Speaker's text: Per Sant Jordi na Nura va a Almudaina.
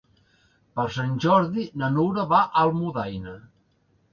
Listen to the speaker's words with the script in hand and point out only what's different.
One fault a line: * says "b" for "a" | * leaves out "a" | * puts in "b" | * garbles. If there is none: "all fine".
all fine